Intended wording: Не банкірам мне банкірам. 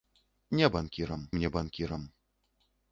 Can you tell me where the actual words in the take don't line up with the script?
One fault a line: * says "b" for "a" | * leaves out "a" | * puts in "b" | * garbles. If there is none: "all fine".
all fine